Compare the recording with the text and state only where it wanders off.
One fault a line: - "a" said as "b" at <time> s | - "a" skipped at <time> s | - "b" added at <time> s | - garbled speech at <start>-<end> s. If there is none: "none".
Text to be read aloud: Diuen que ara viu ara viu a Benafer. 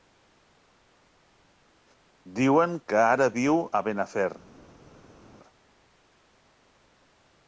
- "ara viu" skipped at 3.6 s